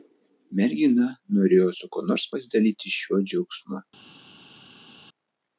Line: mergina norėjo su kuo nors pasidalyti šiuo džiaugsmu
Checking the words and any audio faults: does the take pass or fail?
pass